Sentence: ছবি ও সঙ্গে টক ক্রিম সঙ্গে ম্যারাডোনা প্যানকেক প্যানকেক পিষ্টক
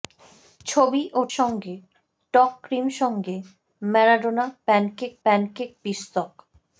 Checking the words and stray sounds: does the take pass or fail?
pass